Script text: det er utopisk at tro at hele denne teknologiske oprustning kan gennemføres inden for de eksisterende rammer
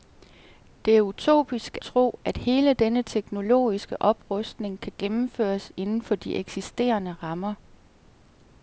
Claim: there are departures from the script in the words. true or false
true